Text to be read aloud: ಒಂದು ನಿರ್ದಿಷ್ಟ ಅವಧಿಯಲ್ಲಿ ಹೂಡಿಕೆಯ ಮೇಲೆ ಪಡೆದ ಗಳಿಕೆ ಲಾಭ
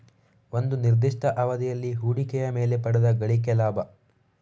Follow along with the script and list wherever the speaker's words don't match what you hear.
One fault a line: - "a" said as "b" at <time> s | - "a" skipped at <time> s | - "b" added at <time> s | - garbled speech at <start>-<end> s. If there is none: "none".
none